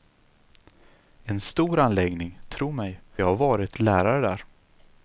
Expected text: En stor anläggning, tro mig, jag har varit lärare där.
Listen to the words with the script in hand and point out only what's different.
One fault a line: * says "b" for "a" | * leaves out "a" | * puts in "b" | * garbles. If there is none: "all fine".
all fine